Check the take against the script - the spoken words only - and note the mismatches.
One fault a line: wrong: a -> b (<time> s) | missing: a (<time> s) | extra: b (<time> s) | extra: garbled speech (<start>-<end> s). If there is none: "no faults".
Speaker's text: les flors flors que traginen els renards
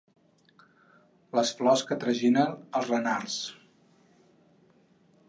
missing: flors (1.8 s)